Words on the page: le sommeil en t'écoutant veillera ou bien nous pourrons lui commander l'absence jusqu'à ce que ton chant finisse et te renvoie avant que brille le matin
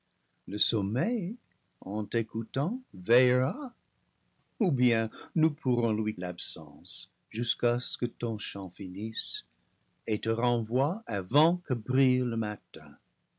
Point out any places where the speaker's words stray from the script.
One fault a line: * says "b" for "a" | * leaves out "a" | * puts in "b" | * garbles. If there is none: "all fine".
* leaves out "commander"